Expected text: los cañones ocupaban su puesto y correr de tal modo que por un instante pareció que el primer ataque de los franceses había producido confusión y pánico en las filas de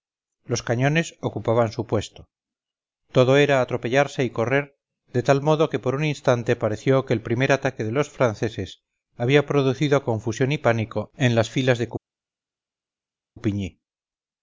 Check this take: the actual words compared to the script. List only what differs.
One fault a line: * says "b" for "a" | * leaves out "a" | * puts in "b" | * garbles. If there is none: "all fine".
* puts in "todo era atropellarse"